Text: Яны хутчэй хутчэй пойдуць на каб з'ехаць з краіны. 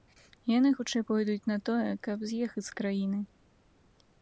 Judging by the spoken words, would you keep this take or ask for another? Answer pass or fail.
fail